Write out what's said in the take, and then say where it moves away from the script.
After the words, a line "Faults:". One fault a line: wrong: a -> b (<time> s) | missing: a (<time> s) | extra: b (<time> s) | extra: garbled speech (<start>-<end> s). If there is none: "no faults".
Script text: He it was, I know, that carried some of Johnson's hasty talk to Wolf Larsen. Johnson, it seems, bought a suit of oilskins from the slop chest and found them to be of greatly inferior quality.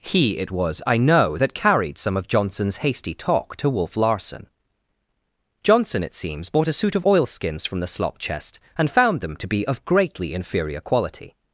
He it was, I know, that carried some of Johnson's hasty talk to Wolf Larsen. Johnson, it seems, bought a suit of oilskins from the slop chest and found them to be of greatly inferior quality.
Faults:
no faults